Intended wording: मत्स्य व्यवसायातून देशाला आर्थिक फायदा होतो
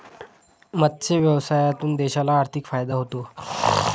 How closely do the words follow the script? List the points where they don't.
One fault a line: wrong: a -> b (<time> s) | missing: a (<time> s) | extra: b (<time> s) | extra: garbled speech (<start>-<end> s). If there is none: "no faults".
no faults